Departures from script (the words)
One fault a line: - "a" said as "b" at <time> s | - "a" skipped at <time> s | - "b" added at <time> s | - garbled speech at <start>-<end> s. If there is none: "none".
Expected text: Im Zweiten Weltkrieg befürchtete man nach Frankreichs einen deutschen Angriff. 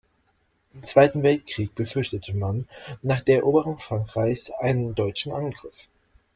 - "der Eroberung" added at 3.2 s